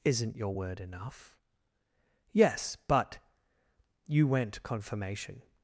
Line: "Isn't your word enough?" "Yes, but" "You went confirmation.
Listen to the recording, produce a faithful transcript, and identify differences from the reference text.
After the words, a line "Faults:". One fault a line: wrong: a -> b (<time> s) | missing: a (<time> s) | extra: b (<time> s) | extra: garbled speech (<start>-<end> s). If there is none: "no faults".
"Isn't your word enough?" "Yes, but" "You went confirmation.
Faults:
no faults